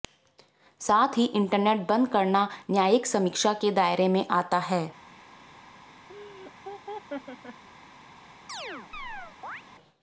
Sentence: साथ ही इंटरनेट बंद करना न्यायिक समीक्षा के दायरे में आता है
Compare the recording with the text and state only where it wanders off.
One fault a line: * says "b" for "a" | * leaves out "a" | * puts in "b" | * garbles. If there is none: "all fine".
all fine